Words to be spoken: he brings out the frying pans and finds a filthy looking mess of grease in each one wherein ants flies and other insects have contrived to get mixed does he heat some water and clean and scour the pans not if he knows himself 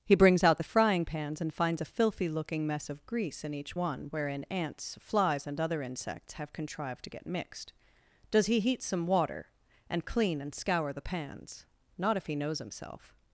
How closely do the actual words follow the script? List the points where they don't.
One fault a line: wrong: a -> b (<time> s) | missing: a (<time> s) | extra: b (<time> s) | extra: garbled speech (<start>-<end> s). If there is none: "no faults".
no faults